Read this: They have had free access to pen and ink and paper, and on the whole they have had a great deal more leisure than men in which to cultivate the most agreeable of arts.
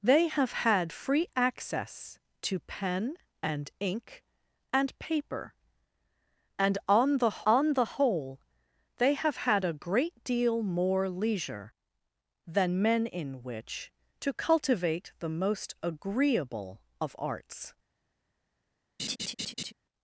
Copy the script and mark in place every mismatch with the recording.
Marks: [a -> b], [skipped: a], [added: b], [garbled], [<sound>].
They have had free access to pen and ink and paper, and on the [added: on the] whole they have had a great deal more leisure than men in which to cultivate the most agreeable of arts. [laugh]